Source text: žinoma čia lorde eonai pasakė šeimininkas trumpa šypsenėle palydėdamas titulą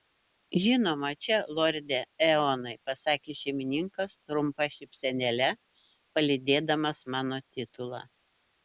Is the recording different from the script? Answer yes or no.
yes